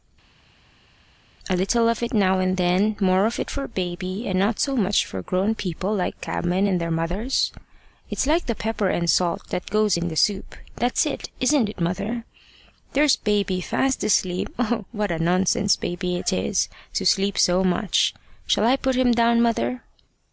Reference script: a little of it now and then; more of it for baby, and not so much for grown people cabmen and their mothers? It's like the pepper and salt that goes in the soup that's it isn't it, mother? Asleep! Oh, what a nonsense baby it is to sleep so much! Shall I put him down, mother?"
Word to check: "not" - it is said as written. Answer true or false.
true